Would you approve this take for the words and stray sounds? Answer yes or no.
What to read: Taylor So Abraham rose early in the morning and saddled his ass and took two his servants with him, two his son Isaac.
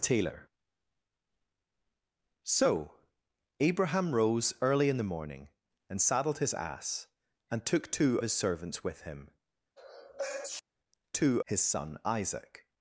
no